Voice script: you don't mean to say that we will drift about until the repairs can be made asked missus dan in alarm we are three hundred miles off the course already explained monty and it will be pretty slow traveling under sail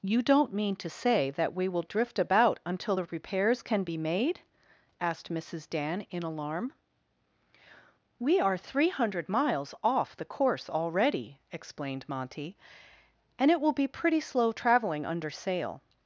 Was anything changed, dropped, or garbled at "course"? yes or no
no